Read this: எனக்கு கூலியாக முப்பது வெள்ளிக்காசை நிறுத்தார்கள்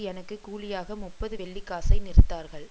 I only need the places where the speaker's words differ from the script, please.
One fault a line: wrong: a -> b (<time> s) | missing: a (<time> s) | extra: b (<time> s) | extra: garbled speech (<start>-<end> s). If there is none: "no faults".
no faults